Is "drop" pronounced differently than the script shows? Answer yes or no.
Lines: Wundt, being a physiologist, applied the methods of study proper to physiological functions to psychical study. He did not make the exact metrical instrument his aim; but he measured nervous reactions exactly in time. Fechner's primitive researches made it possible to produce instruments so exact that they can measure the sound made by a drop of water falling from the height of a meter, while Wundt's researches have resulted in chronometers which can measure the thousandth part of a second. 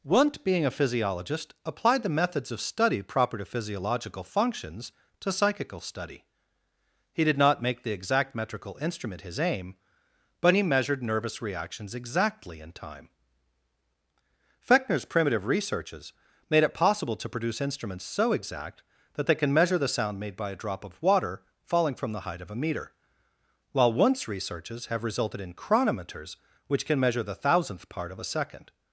no